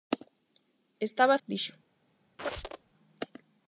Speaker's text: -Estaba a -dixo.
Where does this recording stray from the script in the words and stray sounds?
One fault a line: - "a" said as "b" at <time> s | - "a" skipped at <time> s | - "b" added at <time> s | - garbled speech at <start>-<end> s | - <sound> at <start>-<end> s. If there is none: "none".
- squeak at 2.4-2.9 s